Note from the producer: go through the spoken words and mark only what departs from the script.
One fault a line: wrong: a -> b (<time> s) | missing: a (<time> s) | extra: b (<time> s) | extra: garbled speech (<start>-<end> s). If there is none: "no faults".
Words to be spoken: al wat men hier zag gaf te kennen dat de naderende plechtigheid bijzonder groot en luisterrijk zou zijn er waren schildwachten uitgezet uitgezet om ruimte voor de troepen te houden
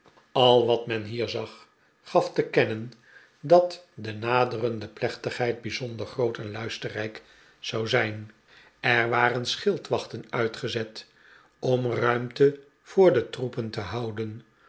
missing: uitgezet (11.1 s)